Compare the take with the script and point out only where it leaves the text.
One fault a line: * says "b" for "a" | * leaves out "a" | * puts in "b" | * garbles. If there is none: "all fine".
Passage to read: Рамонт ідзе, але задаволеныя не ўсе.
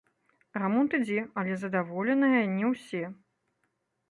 all fine